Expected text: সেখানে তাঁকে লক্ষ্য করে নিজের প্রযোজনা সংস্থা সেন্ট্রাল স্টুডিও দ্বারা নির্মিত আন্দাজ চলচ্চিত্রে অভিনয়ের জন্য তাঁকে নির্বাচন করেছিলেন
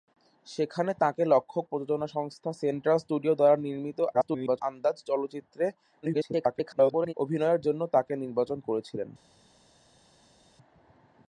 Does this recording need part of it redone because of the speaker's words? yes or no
yes